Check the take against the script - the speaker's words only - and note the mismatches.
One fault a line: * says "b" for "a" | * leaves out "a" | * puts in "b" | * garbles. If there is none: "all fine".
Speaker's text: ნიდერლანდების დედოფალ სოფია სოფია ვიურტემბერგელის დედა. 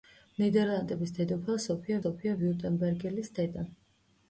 all fine